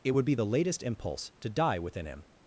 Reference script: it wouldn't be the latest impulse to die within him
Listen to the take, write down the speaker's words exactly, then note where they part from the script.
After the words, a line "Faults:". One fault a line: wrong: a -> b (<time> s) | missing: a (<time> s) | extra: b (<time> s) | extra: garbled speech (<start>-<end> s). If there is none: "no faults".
it would be the latest impulse to die within him
Faults:
wrong: wouldn't -> would (0.1 s)